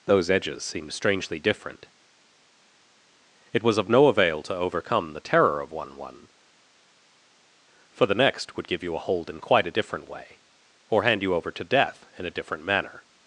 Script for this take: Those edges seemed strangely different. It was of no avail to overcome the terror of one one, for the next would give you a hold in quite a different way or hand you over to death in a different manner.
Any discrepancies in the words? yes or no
no